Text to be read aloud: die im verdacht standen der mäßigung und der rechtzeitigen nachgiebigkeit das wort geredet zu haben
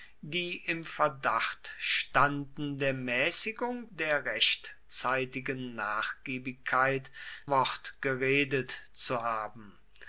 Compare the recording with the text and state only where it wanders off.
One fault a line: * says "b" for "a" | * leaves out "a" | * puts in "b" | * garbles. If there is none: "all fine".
* leaves out "und"
* leaves out "das"